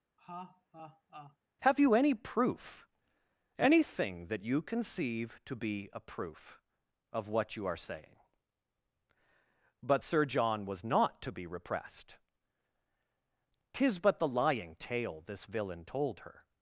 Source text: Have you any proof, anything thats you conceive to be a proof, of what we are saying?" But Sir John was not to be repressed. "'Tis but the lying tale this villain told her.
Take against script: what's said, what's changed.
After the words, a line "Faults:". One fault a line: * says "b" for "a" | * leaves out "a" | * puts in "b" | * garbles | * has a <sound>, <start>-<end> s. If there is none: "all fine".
Have you any proof, anything that you conceive to be a proof, of what you are saying?" But Sir John was not to be repressed. "'Tis but the lying tale this villain told her.
Faults:
* has a laugh, 0.2-1.4 s
* says "that" for "thats"
* says "you" for "we"